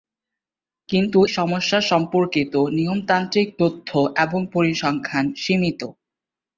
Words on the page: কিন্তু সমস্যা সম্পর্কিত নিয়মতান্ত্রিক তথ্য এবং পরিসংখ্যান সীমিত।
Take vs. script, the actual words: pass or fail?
pass